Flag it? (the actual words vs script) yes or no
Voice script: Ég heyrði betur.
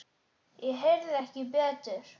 yes